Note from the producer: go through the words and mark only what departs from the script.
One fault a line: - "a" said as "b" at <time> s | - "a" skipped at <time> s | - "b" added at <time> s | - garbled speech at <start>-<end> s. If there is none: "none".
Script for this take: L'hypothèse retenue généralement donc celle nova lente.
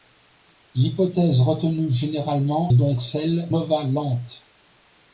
none